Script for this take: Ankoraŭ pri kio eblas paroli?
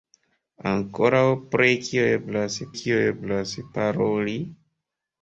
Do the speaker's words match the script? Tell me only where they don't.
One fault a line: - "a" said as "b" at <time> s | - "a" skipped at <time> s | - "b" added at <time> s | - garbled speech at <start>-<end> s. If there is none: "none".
- "kio eblas" added at 2.8 s